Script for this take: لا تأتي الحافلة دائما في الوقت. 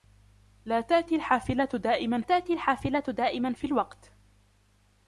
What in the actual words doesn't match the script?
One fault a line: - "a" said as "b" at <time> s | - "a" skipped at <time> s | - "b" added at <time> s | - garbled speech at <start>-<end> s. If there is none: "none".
- "تأتي الحافلة دائما" added at 2.2 s